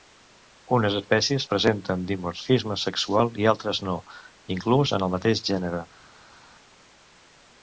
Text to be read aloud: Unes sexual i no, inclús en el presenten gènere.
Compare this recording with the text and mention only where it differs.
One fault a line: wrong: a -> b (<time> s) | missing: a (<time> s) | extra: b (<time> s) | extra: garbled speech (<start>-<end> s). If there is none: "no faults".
extra: espècies presenten dimorfisme (1.0 s)
extra: altres (3.5 s)
wrong: presenten -> mateix (5.2 s)